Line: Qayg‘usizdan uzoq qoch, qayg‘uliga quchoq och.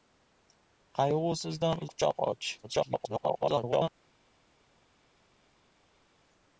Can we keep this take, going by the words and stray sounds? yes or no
no